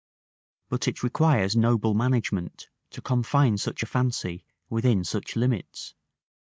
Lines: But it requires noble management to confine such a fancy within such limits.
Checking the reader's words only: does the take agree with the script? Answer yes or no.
yes